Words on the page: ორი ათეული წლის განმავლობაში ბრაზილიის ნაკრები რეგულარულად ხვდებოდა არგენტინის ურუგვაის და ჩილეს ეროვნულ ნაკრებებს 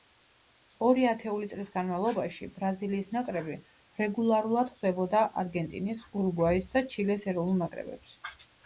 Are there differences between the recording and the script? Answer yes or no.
no